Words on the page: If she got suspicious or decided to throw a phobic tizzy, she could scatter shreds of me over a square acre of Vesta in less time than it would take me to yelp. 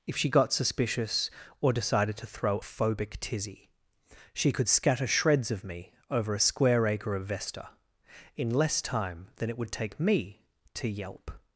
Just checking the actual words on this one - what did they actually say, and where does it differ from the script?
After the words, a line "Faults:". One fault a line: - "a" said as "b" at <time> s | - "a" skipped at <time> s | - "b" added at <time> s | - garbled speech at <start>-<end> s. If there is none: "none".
If she got suspicious or decided to throw phobic tizzy, she could scatter shreds of me over a square acre of Vesta in less time than it would take me to yelp.
Faults:
- "a" skipped at 2.6 s